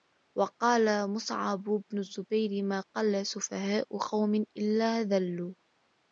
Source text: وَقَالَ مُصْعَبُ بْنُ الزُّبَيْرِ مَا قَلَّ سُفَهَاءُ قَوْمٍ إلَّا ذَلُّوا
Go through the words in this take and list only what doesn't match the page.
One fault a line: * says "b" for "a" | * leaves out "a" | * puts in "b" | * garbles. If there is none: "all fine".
all fine